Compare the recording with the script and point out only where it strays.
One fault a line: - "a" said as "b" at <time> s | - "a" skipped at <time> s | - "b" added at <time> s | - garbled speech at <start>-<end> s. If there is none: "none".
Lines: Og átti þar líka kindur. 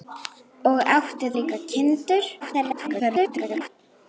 - "þar" skipped at 1.3 s
- garbled speech at 2.4-3.7 s